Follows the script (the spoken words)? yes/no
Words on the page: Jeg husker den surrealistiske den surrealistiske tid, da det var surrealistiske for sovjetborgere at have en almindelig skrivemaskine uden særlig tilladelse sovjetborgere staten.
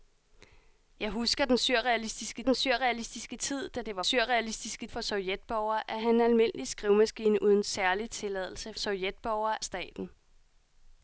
yes